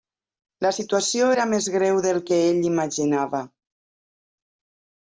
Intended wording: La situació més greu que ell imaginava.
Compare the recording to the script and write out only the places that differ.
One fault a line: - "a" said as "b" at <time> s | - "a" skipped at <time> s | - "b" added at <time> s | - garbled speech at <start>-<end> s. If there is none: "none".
- "era" added at 1.3 s
- "del" added at 2.1 s